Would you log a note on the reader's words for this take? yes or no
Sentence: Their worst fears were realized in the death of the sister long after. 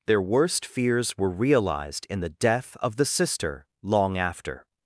no